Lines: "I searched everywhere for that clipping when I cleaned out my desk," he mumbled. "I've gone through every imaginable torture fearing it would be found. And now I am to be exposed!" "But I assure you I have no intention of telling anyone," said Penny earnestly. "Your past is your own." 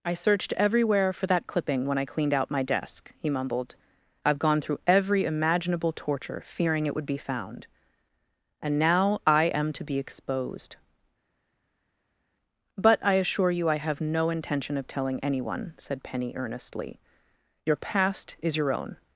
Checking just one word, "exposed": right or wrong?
right